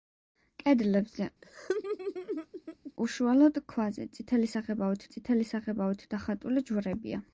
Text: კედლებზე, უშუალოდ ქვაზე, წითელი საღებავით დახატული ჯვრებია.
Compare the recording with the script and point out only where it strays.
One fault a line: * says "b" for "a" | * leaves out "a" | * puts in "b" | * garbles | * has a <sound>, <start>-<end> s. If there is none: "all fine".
* has a laugh, 1.4-2.9 s
* puts in "წითელი საღებავით"